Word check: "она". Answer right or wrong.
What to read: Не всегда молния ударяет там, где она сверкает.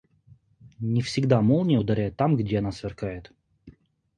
right